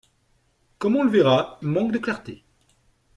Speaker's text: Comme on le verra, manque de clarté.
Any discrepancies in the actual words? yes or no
no